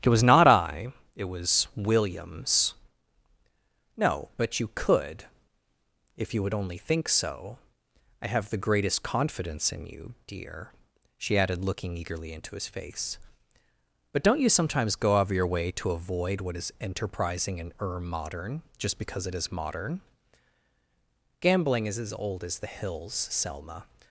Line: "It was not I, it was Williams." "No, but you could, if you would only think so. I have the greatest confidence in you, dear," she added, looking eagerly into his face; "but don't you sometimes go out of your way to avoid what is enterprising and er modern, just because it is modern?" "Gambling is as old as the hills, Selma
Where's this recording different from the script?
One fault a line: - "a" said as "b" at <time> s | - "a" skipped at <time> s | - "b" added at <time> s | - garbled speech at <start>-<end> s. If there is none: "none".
none